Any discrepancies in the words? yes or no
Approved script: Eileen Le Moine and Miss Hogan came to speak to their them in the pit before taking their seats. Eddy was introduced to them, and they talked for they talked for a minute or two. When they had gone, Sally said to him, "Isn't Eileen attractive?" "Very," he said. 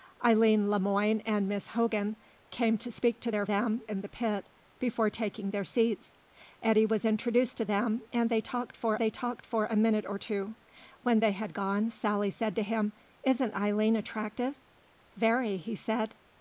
no